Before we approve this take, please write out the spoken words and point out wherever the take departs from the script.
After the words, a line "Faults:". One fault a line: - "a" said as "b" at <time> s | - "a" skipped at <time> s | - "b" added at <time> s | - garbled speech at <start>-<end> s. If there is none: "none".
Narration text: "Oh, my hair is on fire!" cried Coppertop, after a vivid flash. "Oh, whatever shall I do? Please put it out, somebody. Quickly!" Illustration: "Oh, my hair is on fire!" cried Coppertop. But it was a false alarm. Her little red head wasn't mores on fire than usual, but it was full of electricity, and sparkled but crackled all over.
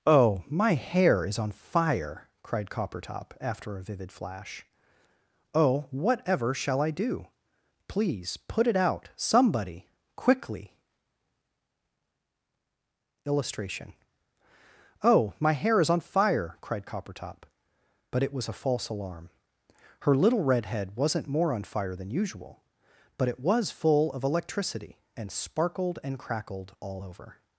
"Oh, my hair is on fire!" cried Coppertop, after a vivid flash. "Oh, whatever shall I do? Please put it out, somebody. Quickly!" Illustration: "Oh, my hair is on fire!" cried Coppertop. But it was a false alarm. Her little red head wasn't more on fire than usual, but it was full of electricity, and sparkled and crackled all over.
Faults:
- "mores" said as "more" at 21.3 s
- "but" said as "and" at 26.0 s